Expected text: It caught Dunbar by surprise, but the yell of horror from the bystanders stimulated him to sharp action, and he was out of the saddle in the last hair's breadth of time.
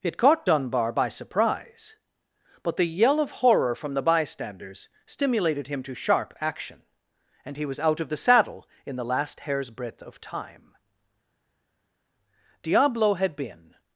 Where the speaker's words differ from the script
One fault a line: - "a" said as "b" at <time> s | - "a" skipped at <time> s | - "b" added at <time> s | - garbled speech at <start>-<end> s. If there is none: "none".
- "Diablo had been" added at 12.6 s